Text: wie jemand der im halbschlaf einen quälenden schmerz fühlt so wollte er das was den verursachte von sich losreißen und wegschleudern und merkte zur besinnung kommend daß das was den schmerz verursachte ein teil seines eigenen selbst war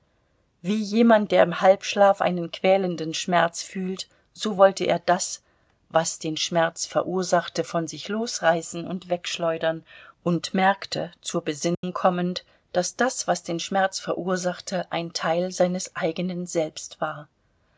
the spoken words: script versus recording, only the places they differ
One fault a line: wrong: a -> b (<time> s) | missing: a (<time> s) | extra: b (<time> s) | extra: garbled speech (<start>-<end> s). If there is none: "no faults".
extra: schmerz (6.4 s)